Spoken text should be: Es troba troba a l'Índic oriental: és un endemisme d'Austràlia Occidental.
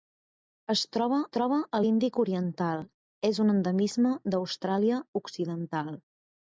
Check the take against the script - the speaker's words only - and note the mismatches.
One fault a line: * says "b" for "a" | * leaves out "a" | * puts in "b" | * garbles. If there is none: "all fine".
all fine